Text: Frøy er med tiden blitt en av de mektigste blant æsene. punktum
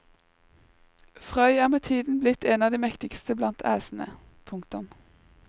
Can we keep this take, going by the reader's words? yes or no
yes